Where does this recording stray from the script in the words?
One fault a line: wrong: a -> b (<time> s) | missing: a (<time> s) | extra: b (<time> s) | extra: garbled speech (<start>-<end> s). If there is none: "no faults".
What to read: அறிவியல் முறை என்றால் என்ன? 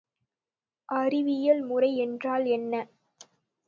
no faults